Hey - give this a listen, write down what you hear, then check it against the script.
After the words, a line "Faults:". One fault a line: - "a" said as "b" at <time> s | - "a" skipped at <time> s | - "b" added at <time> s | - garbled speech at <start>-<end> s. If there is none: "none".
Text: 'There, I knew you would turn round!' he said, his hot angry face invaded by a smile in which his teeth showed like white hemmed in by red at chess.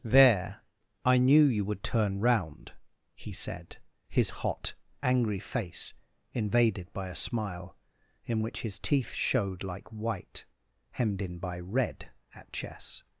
'There, I knew you would turn round!' he said, his hot angry face invaded by a smile in which his teeth showed like white hemmed in by red at chess.
Faults:
none